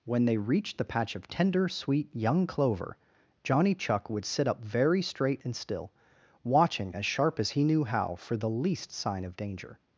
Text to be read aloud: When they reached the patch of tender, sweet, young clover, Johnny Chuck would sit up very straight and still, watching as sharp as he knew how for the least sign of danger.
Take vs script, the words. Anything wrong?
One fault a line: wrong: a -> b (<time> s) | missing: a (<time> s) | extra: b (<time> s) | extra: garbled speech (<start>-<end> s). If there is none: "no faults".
no faults